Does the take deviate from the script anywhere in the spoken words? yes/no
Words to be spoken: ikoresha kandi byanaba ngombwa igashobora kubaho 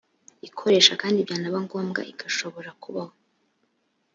no